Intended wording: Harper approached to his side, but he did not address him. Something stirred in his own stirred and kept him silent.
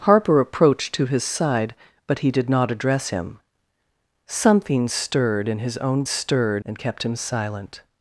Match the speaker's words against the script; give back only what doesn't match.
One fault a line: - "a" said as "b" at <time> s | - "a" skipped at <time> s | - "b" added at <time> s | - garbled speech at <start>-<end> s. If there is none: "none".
none